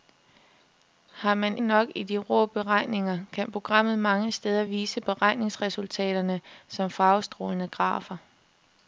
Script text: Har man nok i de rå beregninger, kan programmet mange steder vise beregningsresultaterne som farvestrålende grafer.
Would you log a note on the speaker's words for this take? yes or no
no